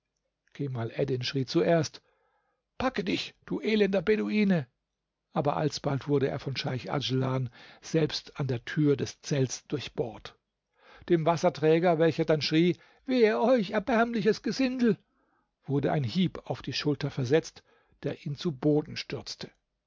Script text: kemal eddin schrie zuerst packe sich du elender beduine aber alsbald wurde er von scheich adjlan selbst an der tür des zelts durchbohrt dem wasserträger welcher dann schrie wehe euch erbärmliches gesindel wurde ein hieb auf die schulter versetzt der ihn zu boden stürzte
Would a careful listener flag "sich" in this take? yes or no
yes